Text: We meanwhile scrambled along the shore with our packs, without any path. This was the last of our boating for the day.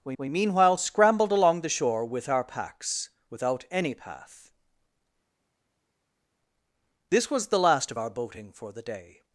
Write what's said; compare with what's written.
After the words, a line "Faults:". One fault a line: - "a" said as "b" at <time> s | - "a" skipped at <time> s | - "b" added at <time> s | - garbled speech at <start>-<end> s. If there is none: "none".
We we meanwhile scrambled along the shore with our packs, without any path. This was the last of our boating for the day.
Faults:
- "we" added at 0.2 s